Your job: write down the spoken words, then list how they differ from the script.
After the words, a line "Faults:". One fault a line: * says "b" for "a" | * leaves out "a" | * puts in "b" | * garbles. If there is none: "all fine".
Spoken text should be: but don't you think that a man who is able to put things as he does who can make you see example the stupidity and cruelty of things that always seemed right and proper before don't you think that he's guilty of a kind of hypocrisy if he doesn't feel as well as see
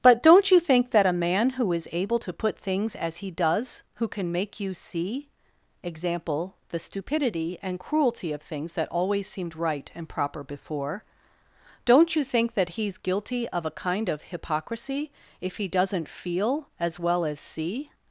but don't you think that a man who is able to put things as he does who can make you see example the stupidity and cruelty of things that always seemed right and proper before don't you think that he's guilty of a kind of hypocrisy if he doesn't feel as well as see
Faults:
all fine